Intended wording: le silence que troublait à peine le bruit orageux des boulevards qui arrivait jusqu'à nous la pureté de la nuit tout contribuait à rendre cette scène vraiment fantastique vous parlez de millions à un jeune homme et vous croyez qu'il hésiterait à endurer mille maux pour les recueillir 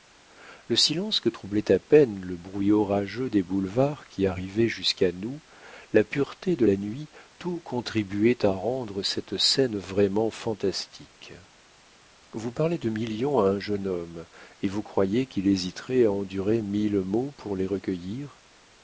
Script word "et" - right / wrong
right